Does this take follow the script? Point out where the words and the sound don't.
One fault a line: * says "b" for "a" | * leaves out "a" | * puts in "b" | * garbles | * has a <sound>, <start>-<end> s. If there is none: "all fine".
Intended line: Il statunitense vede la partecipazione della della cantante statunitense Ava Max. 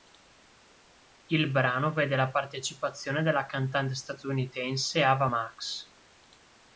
* says "brano" for "statunitense"
* leaves out "della"